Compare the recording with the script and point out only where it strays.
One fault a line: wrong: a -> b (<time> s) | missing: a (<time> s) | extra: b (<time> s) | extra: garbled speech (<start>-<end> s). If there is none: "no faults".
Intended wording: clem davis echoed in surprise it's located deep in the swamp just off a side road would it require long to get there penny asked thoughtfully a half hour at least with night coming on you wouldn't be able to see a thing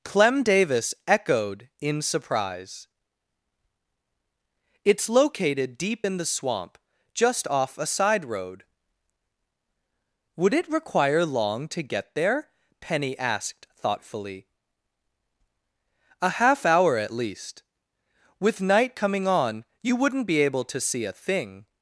no faults